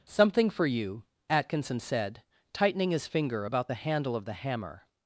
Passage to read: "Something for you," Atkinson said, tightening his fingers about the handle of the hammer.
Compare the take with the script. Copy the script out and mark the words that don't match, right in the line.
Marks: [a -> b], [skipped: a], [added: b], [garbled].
"Something for you," Atkinson said, tightening his [fingers -> finger] about the handle of the hammer.